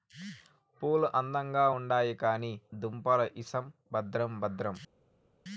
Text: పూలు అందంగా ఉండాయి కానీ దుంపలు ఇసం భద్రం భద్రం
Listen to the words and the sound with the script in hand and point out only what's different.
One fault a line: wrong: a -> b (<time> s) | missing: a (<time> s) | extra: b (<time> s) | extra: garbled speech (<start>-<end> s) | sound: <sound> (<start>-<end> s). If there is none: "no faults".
no faults